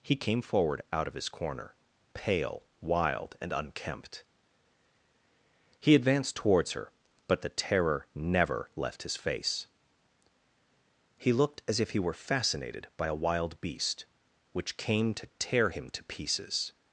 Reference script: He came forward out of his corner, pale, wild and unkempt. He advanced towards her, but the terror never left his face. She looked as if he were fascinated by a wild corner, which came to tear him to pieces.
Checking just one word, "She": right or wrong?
wrong